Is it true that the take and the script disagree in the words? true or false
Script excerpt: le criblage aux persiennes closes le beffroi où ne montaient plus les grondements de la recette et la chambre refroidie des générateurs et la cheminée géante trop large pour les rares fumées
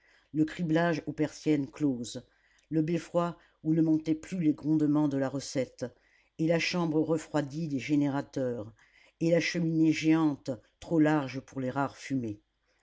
false